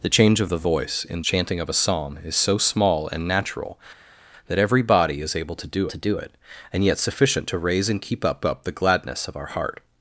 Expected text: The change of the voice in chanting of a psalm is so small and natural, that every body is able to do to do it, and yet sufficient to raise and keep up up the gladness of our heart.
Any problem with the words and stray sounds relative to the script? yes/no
no